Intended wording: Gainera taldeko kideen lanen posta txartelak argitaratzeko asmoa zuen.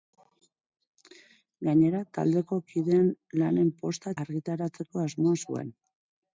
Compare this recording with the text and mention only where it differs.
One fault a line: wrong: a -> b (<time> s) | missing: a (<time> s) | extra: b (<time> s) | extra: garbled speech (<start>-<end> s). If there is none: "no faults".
missing: txartelak (4.2 s)